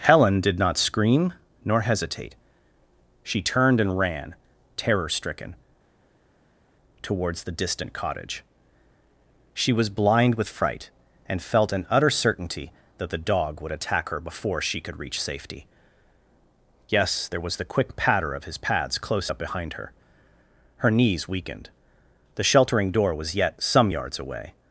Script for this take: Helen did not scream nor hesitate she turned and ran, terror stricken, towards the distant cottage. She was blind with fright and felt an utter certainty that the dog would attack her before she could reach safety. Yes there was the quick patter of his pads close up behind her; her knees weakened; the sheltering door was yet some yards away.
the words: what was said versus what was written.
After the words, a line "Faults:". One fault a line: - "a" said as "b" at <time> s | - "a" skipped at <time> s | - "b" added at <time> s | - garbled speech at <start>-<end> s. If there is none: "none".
Helen did not scream nor hesitate she turned and ran, terror stricken, towards the distant cottage. She was blind with fright and felt an utter certainty that the dog would attack her before she could reach safety. Yes there was the quick patter of his pads close up behind her; her knees weakened; the sheltering door was yet some yards away.
Faults:
none